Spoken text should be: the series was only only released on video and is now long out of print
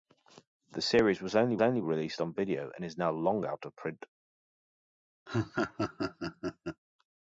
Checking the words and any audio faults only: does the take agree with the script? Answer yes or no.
no